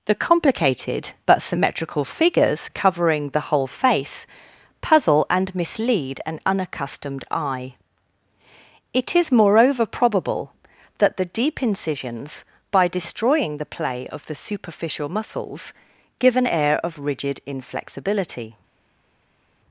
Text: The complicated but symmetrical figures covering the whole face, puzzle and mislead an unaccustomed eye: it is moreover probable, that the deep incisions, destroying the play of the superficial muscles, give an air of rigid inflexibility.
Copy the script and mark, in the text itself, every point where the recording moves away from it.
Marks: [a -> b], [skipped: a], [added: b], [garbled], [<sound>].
The complicated but symmetrical figures covering the whole face, puzzle and mislead an unaccustomed eye: it is moreover probable, that the deep incisions, [added: by] destroying the play of the superficial muscles, give an air of rigid inflexibility.